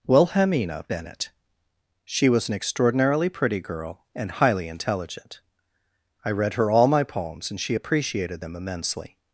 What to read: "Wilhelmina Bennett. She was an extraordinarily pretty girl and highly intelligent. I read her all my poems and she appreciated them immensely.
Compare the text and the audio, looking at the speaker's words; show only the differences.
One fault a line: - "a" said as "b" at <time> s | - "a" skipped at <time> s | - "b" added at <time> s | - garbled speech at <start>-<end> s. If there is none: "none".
none